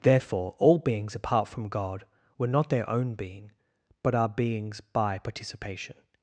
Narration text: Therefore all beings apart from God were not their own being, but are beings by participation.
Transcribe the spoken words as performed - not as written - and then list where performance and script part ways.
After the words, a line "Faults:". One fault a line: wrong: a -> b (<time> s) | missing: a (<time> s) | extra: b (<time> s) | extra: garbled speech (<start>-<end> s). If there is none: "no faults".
Therefore all beings apart from God were not their own being, but are beings by participation.
Faults:
no faults